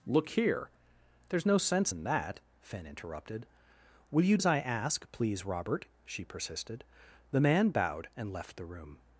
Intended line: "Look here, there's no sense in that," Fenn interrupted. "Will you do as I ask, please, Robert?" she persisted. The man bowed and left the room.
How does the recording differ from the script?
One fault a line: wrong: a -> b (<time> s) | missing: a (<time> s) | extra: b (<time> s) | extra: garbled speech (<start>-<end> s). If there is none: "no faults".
missing: do (4.4 s)